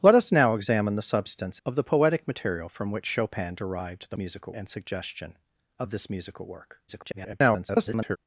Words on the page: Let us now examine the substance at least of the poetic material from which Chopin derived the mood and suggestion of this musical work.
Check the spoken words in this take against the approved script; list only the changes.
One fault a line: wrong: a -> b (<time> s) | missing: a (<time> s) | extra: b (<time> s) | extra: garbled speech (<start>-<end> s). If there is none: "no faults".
missing: at least (1.6 s)
wrong: mood -> musical (4.2 s)
extra: garbled speech (6.9-8.2 s)